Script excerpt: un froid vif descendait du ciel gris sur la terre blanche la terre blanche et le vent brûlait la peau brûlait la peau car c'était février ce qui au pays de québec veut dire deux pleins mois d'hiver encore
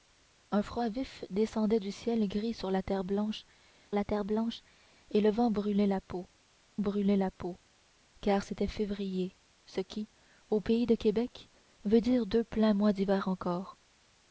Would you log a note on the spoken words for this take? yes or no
no